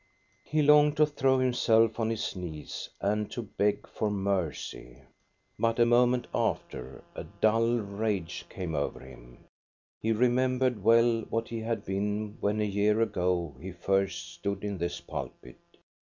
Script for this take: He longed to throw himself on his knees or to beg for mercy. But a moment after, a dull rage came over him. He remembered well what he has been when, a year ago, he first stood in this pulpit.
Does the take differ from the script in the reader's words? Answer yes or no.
yes